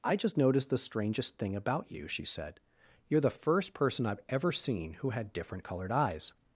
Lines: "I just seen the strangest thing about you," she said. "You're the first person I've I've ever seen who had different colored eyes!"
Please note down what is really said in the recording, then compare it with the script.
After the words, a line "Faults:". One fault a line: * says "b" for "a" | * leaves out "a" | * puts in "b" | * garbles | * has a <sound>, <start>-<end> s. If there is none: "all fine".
"I just noticed the strangest thing about you," she said. "You're the first person I've ever seen who had different colored eyes!"
Faults:
* says "noticed" for "seen"
* leaves out "I've"